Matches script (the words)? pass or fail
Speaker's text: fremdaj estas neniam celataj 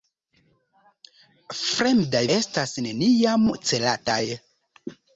pass